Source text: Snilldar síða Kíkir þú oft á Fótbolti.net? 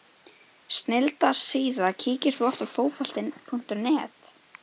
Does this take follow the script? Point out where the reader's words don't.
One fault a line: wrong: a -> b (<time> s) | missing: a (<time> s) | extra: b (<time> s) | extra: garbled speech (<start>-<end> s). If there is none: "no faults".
no faults